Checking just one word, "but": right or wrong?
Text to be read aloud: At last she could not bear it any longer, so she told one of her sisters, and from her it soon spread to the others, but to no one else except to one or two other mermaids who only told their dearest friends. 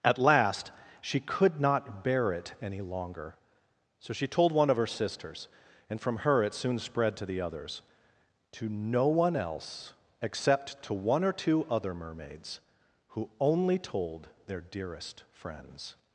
wrong